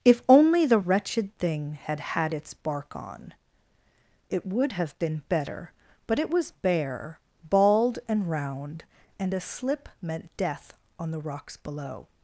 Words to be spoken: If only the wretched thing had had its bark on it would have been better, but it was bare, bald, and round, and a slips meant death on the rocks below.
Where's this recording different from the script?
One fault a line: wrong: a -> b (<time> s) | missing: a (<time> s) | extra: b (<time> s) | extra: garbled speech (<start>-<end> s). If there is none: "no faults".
wrong: slips -> slip (9.4 s)